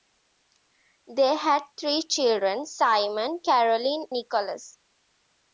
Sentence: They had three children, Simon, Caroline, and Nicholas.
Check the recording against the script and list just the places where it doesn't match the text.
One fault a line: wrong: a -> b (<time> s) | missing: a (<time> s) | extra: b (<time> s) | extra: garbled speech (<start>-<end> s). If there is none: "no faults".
missing: and (4.1 s)